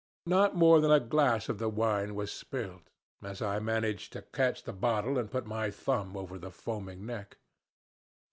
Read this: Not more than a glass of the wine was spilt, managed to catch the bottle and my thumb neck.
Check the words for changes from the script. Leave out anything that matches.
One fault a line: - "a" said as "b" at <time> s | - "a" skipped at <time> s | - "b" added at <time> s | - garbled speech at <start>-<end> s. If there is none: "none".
- "as I" added at 3.2 s
- "put" added at 5.3 s
- "over the foaming" added at 6.1 s